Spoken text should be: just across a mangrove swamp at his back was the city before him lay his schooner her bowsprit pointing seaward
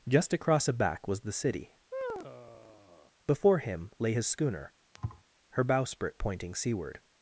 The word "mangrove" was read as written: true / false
false